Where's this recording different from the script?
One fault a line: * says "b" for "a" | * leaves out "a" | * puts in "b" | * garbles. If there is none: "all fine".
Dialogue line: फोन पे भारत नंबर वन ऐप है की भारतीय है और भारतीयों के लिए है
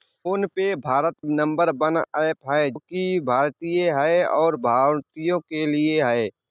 all fine